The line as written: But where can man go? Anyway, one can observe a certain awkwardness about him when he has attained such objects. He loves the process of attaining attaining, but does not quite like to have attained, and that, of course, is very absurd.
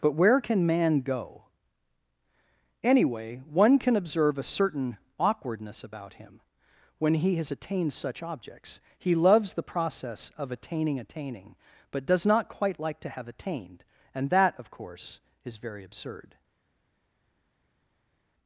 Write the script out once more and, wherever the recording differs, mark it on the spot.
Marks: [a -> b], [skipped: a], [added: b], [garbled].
But where can man go? Anyway, one can observe a certain awkwardness about him when he has attained such objects. He loves the process of attaining attaining, but does not quite like to have attained, and that, of course, is very absurd.